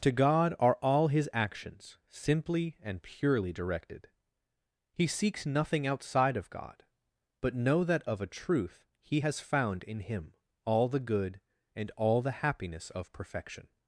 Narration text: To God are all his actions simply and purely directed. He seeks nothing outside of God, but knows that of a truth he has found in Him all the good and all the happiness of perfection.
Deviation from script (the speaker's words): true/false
true